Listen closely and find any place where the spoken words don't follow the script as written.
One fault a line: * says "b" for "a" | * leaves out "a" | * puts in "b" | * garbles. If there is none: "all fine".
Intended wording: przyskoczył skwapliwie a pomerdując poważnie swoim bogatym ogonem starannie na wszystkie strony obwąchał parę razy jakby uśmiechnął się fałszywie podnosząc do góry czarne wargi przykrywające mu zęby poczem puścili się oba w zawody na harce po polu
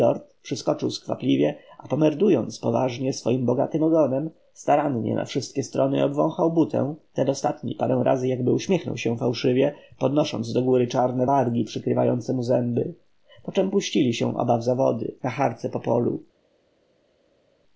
* puts in "butę ten ostatni"